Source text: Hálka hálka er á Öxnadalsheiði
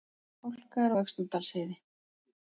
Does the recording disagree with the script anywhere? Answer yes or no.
yes